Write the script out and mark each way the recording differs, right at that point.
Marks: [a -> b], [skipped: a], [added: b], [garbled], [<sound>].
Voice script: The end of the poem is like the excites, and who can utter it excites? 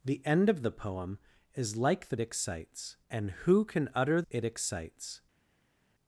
The end of the poem is like the excites, and who can utter it excites?